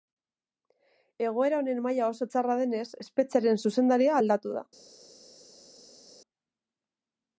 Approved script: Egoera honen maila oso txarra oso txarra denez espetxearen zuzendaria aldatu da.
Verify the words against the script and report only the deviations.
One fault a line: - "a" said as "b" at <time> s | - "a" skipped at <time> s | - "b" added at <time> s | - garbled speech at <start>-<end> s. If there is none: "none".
- "oso txarra" skipped at 2.6 s